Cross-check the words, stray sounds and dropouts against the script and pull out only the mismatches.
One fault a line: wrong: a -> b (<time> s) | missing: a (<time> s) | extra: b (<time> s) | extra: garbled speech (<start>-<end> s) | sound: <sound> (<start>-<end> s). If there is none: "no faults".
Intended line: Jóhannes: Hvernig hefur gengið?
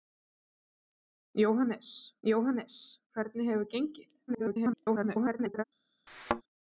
extra: jóhannes (2.3 s)
extra: garbled speech (4.3-5.6 s)
sound: thud (6.1-6.4 s)